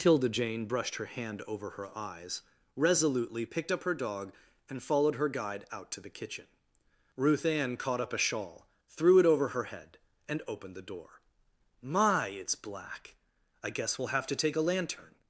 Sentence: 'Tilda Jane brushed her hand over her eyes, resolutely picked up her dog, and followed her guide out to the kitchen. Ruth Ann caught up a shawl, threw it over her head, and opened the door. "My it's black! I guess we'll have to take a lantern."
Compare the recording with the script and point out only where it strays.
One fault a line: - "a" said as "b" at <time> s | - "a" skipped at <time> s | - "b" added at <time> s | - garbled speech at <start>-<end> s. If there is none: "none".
none